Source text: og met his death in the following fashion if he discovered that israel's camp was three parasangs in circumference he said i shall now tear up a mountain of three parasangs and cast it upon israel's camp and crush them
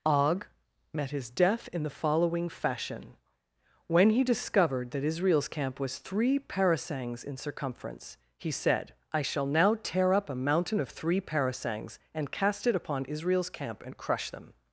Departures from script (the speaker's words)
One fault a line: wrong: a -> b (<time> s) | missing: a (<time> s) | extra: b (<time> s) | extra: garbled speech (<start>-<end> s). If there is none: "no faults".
wrong: if -> when (3.9 s)